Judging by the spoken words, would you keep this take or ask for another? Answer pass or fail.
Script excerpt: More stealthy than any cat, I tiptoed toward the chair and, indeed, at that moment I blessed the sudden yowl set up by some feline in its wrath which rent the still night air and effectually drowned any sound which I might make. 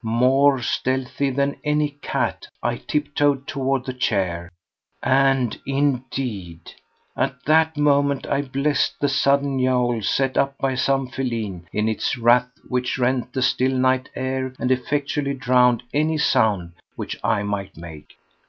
pass